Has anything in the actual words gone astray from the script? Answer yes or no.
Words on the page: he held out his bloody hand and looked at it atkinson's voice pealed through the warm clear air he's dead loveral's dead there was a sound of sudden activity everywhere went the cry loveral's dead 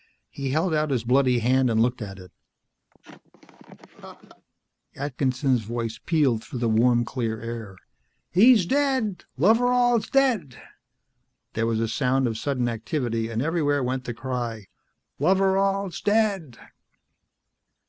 yes